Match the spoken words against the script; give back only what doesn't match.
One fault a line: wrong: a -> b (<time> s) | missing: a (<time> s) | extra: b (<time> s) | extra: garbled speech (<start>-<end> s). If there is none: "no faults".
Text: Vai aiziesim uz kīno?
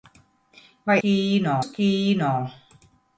wrong: aiziesim -> kīno (1.0 s)